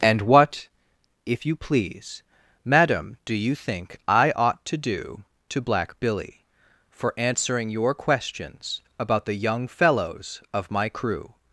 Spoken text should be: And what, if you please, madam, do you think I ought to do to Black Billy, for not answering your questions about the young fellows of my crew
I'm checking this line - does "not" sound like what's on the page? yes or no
no